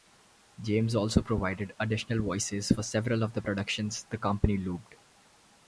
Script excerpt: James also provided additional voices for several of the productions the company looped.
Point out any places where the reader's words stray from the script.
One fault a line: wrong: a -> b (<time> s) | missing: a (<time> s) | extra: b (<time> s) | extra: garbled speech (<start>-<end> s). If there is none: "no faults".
no faults